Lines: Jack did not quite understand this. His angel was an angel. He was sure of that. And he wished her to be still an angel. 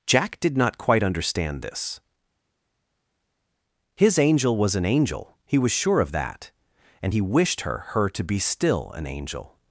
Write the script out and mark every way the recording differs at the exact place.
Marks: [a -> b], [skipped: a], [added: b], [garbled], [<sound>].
Jack did not quite understand this. His angel was an angel. He was sure of that. And he wished her [added: her] to be still an angel.